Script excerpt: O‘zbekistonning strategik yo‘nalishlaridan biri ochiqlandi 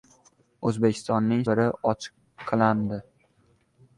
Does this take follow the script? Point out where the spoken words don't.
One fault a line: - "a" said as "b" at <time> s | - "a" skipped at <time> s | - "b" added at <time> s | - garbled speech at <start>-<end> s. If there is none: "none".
- "strategik yo‘nalishlaridan" skipped at 1.4 s